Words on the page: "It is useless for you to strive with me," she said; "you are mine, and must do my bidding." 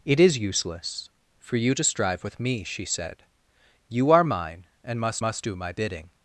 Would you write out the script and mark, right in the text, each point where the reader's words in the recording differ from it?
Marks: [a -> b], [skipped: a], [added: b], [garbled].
"It is useless for you to strive with me," she said; "you are mine, and must [added: must] do my bidding."